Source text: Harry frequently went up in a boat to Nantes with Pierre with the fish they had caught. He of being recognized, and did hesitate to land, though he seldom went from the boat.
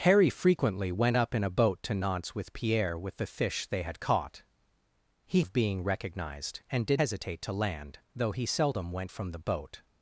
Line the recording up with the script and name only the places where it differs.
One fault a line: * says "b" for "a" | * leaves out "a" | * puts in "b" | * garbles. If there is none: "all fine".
all fine